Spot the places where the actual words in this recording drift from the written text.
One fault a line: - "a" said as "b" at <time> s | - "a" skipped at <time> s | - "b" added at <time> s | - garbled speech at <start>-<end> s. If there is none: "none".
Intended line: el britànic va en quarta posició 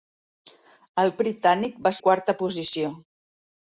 none